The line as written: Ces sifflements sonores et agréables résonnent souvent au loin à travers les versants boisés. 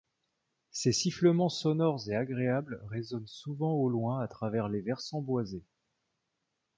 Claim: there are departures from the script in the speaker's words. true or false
false